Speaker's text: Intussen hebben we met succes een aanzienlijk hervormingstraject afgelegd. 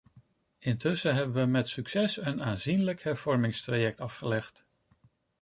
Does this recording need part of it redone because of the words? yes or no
no